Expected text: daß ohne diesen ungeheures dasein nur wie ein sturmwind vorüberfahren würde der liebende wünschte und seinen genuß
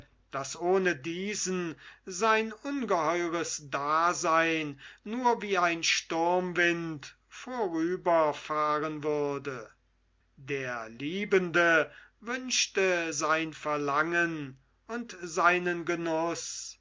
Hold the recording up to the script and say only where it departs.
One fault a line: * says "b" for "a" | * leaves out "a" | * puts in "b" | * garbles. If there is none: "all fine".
* puts in "sein"
* puts in "sein verlangen"